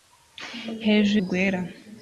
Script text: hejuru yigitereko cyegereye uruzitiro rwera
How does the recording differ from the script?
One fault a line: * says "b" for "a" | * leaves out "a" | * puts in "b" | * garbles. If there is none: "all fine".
* leaves out "yigitereko cyegereye uruzitiro"